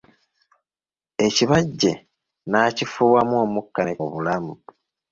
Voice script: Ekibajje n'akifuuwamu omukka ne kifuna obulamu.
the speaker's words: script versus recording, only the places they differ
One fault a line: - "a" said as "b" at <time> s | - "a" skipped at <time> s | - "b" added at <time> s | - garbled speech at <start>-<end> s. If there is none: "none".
- "kifuna" skipped at 3.9 s